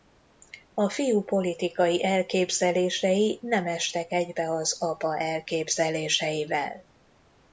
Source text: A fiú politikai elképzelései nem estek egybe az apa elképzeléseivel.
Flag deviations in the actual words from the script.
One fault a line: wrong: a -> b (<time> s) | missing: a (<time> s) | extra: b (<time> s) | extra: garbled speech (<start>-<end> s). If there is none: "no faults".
no faults